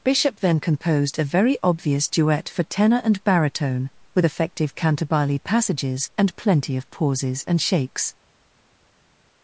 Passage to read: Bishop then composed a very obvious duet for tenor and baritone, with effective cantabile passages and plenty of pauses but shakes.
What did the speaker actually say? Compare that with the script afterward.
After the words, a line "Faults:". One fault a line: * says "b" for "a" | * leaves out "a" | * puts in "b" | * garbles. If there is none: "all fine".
Bishop then composed a very obvious duet for tenor and baritone, with effective cantabile passages and plenty of pauses and shakes.
Faults:
* says "and" for "but"